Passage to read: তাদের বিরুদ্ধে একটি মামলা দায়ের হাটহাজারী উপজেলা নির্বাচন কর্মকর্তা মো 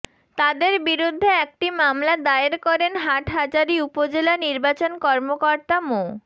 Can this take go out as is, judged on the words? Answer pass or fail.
fail